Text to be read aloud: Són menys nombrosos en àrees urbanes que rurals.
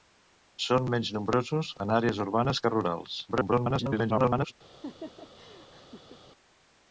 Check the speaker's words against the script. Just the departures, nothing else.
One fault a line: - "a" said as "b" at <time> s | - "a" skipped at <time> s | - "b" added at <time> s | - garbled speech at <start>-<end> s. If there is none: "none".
- garbled speech at 3.3-4.5 s